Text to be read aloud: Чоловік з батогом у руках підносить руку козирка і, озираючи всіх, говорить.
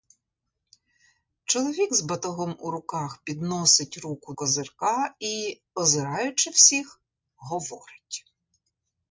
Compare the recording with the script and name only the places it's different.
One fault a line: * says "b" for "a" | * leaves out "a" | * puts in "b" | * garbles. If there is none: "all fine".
all fine